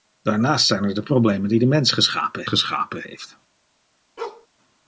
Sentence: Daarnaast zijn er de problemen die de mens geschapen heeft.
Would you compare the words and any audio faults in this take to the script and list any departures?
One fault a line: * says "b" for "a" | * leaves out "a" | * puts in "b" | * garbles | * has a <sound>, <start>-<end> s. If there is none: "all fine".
* puts in "geschapen"
* has a bark, 4.2-4.5 s